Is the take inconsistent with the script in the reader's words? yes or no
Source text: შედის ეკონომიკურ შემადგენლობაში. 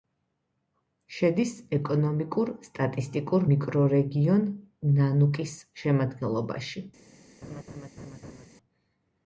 yes